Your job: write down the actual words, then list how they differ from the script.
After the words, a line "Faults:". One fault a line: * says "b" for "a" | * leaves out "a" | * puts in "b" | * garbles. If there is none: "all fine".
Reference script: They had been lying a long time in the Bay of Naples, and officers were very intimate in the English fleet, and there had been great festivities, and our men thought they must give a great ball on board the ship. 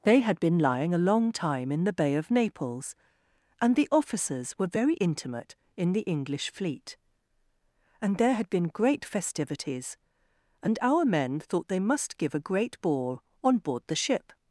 They had been lying a long time in the Bay of Naples, and the officers were very intimate in the English fleet, and there had been great festivities, and our men thought they must give a great ball on board the ship.
Faults:
* puts in "the"